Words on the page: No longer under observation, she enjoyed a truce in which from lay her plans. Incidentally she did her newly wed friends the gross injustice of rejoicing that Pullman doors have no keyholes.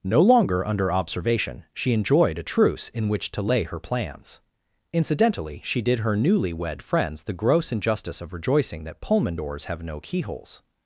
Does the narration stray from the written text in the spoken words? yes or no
yes